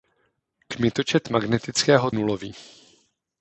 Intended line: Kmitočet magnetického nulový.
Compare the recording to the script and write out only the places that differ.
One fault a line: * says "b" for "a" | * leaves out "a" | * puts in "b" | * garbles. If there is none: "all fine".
all fine